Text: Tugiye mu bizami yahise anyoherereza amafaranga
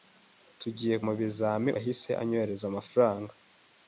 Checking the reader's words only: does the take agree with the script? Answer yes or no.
yes